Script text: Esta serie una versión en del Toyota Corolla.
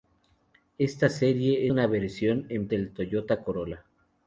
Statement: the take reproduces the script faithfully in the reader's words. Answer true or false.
true